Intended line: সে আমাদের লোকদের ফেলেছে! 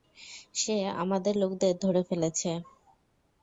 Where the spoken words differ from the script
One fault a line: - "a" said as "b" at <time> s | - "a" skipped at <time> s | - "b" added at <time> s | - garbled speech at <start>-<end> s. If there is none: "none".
- "ধরে" added at 1.8 s